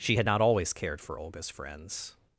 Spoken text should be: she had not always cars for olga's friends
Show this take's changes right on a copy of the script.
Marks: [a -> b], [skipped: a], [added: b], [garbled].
she had not always [cars -> cared] for olga's friends